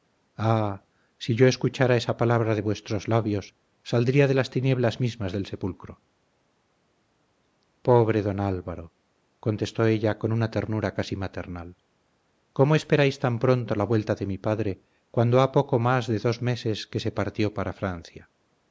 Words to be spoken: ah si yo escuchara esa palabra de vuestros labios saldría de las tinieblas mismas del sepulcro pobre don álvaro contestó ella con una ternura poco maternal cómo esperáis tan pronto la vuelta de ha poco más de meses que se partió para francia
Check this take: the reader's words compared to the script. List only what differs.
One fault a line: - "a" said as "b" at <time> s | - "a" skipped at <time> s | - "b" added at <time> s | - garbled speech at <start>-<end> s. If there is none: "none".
- "poco" said as "casi" at 10.9 s
- "mi padre cuando" added at 14.3 s
- "dos" added at 16.2 s